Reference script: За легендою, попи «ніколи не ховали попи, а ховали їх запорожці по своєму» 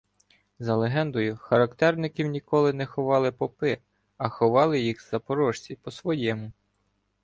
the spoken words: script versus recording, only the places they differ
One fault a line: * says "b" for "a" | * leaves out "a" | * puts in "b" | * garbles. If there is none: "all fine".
* says "характерників" for "попи"